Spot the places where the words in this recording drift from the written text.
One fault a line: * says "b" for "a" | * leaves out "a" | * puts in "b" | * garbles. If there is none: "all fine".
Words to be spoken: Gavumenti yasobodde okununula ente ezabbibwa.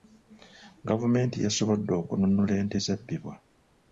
all fine